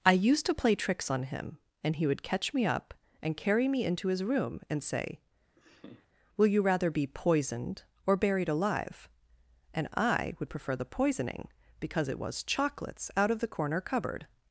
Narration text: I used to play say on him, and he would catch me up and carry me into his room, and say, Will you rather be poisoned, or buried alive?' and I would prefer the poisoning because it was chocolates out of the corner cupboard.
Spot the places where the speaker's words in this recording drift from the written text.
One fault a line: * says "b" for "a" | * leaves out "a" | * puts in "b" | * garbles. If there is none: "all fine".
* says "tricks" for "say"